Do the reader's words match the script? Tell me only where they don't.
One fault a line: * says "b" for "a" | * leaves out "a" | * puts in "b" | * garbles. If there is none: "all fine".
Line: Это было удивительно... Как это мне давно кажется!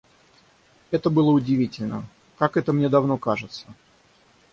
all fine